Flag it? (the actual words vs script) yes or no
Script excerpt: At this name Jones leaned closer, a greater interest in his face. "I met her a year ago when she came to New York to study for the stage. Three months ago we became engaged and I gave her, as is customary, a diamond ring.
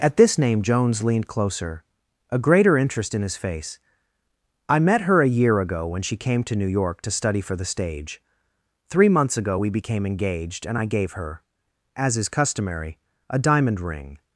no